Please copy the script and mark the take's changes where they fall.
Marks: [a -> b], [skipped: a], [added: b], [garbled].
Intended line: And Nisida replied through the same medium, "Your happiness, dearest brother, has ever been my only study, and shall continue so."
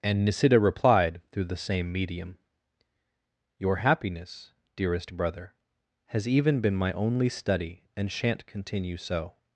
And Nisida replied through the same medium, "Your happiness, dearest brother, has [ever -> even] been my only study, and [shall -> shan't] continue so."